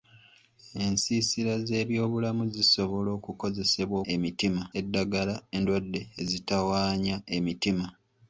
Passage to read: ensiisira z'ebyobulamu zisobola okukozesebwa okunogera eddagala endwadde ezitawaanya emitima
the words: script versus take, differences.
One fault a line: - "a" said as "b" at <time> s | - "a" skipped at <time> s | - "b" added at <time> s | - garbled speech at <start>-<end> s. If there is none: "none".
- "okunogera" said as "emitima" at 4.1 s